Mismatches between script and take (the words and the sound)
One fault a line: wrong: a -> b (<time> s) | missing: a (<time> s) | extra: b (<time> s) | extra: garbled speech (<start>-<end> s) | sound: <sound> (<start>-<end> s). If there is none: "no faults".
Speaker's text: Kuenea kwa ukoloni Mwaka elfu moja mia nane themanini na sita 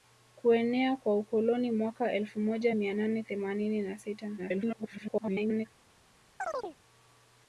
extra: garbled speech (4.4-5.7 s)
sound: chirp (6.4-6.8 s)